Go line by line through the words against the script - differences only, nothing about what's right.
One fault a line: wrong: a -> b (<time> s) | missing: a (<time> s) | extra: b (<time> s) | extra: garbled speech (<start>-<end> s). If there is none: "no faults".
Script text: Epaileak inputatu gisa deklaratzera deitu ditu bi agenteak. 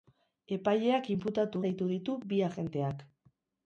missing: gisa deklaratzera (1.6 s)